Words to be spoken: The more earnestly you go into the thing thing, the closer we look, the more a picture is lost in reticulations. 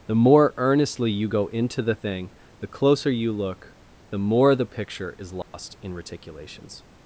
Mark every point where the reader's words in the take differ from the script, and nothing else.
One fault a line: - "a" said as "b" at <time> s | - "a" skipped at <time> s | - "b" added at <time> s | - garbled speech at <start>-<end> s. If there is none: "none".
- "thing" skipped at 2.3 s
- "we" said as "you" at 3.1 s
- "a" said as "the" at 4.5 s